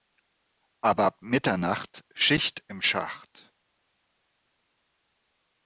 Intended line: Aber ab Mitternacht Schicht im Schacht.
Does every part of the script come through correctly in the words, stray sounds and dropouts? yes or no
yes